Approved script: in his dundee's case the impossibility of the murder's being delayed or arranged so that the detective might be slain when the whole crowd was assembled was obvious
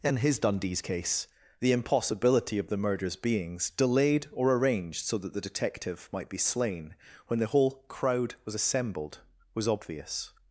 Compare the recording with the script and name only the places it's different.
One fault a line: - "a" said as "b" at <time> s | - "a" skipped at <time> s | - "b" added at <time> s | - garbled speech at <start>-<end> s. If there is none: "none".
- "being" said as "beings" at 3.2 s